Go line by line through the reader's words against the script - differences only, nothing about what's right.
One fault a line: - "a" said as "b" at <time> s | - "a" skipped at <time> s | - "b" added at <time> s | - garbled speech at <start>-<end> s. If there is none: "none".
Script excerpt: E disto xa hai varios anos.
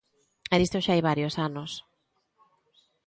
none